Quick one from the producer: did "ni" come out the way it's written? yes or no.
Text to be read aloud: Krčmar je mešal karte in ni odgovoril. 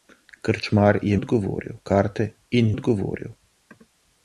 no